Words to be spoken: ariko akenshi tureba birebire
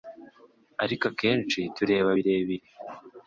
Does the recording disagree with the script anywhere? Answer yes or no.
no